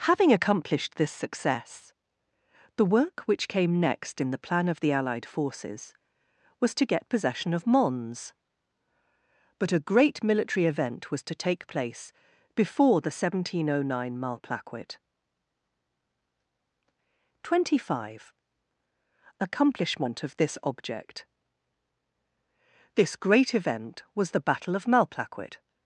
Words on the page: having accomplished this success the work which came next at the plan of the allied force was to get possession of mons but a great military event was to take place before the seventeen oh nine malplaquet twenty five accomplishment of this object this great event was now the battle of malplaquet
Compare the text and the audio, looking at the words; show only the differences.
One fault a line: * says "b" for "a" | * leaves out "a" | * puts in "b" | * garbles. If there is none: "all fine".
* says "in" for "at"
* says "forces" for "force"
* leaves out "now"